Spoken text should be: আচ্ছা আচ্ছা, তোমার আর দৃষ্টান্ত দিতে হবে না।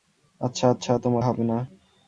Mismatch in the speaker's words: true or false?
true